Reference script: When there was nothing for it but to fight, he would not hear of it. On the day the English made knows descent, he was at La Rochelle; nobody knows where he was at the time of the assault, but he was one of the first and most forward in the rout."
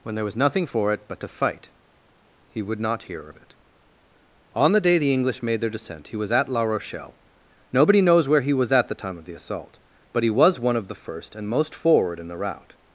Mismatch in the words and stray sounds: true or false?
true